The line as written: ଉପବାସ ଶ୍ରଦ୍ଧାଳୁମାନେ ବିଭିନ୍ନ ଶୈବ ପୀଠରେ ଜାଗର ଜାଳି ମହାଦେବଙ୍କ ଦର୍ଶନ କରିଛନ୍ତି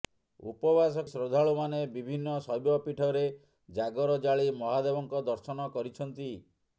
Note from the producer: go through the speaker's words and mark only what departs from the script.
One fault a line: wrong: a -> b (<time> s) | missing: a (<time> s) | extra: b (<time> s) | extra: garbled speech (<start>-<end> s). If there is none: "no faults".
no faults